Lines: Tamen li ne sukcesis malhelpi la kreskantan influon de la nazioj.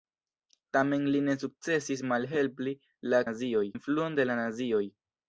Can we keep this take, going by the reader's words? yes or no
no